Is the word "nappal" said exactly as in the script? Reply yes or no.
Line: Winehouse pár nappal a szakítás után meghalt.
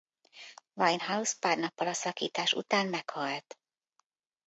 yes